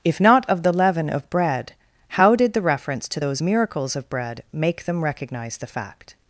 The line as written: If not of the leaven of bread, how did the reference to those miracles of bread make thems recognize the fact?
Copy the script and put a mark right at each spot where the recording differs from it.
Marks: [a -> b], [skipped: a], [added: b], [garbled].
If not of the leaven of bread, how did the reference to those miracles of bread make [thems -> them] recognize the fact?